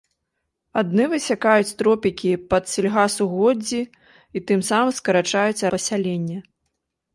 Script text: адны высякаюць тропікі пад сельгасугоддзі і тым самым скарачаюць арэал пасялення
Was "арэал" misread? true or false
true